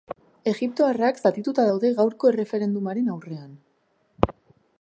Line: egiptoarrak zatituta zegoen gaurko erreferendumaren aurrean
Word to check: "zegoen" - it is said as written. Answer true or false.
false